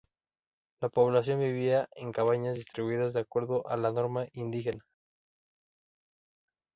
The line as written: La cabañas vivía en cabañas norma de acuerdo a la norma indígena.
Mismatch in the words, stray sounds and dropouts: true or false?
true